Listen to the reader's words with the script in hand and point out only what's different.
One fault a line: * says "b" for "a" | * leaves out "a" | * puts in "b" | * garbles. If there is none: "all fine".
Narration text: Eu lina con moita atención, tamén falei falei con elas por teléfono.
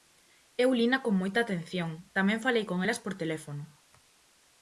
* leaves out "falei"